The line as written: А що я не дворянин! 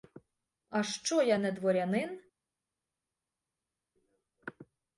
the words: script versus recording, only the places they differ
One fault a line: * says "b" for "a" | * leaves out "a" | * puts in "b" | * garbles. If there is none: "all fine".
all fine